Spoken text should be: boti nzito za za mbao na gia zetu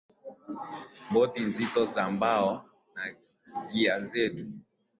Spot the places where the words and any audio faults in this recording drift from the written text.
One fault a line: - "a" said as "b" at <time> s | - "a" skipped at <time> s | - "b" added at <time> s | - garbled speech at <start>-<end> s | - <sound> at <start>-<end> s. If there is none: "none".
- "za" skipped at 2.0 s